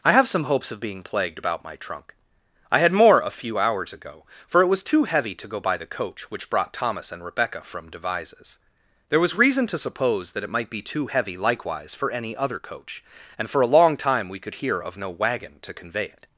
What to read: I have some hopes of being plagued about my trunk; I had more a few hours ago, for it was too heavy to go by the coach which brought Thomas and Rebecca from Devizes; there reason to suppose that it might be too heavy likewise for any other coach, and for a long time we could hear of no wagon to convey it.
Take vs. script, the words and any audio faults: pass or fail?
fail